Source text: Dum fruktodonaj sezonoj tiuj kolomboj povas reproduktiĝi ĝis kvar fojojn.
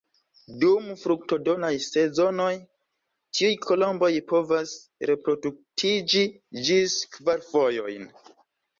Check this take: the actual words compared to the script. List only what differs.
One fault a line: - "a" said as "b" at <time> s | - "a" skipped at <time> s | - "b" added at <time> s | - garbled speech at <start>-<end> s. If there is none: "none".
none